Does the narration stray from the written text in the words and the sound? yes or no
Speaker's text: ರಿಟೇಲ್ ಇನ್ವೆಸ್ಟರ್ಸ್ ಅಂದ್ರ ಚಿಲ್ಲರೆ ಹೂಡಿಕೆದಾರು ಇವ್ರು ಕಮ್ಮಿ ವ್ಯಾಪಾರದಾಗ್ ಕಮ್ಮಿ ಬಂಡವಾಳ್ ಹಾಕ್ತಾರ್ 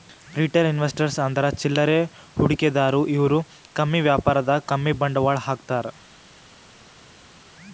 no